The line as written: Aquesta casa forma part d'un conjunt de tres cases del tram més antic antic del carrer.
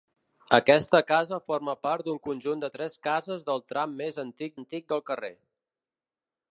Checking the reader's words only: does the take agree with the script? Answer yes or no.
yes